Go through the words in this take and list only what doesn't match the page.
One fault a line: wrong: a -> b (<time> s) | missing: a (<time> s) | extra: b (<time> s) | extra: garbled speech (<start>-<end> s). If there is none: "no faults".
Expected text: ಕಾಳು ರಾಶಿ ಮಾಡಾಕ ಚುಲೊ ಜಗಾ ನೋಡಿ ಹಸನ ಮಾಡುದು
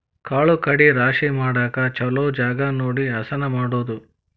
extra: ಕಡಿ (0.6 s)